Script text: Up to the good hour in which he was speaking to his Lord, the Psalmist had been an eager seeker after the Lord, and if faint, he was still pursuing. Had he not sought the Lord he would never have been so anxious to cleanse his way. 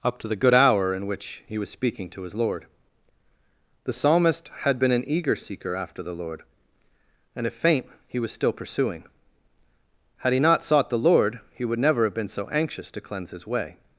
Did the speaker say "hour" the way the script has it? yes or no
yes